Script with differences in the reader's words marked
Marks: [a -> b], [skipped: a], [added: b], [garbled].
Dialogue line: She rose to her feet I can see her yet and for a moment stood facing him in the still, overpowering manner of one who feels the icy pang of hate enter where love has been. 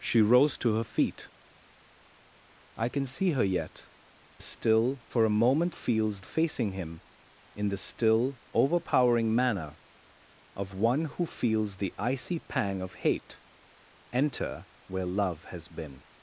She rose to her feet I can see her yet [and -> still] for a moment [stood -> feels] facing him in the still, overpowering manner of one who feels the icy pang of hate enter where love has been.